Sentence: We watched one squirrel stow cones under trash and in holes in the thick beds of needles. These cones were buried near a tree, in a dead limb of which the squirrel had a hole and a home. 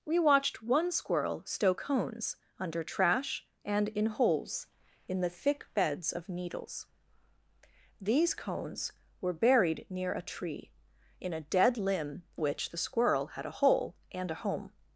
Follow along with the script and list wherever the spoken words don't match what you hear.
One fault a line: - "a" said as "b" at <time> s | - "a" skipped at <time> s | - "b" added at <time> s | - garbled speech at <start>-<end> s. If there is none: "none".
- "of" skipped at 12.2 s